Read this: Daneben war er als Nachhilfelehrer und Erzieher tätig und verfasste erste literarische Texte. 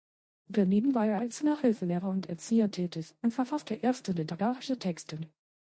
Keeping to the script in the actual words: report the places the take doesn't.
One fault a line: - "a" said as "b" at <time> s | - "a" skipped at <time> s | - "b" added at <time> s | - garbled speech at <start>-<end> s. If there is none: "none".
none